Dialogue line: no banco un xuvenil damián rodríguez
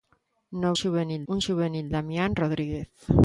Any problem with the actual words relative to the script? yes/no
yes